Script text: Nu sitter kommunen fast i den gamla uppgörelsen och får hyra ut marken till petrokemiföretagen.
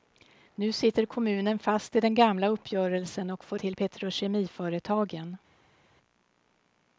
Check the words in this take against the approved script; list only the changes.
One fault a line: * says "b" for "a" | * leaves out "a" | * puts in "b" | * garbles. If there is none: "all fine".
* leaves out "hyra ut marken"